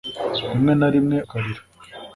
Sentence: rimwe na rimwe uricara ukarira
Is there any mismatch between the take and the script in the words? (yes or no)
yes